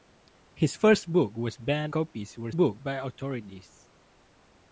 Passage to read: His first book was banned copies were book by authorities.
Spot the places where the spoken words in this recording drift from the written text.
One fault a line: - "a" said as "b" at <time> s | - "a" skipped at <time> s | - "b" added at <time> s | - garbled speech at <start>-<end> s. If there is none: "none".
none